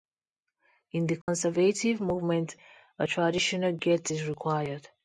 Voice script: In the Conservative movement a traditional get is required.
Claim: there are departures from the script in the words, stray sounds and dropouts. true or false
true